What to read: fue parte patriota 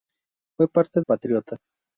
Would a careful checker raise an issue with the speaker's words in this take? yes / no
no